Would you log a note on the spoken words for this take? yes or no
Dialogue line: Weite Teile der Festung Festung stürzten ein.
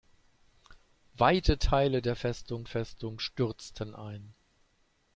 no